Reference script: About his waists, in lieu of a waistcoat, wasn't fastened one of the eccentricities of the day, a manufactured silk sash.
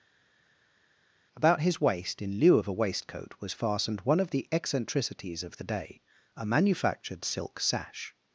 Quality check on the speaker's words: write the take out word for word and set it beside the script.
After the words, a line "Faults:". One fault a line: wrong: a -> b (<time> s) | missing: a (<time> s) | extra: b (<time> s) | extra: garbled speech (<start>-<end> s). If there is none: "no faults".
About his waist, in lieu of a waistcoat, was fastened one of the eccentricities of the day, a manufactured silk sash.
Faults:
wrong: waists -> waist (1.8 s)
wrong: wasn't -> was (3.4 s)